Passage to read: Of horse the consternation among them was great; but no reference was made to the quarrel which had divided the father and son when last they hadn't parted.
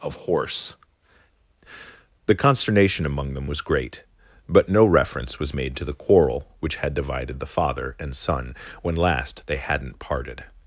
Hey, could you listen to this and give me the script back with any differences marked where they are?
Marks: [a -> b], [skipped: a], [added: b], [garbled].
Of horse the consternation among them was great; but no reference was made to the quarrel which had divided the father and son when last they hadn't parted.